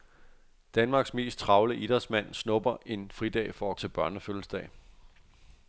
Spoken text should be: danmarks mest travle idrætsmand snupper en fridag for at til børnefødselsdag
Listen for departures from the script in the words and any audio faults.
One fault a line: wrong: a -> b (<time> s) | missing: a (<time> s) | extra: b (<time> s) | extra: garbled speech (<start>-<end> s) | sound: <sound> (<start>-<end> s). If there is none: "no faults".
no faults